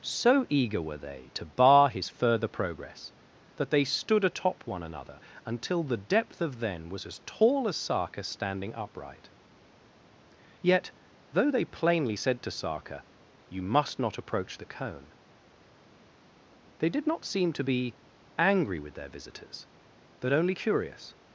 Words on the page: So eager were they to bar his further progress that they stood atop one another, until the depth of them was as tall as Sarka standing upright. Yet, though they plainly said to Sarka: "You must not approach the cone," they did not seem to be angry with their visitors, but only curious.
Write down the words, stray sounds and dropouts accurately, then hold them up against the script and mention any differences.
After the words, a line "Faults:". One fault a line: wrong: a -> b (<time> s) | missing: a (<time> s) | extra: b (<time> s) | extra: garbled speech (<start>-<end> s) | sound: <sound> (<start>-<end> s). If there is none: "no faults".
So eager were they to bar his further progress that they stood atop one another, until the depth of then was as tall as Sarka standing upright. Yet, though they plainly said to Sarka: "You must not approach the cone," they did not seem to be angry with their visitors, but only curious.
Faults:
wrong: them -> then (6.6 s)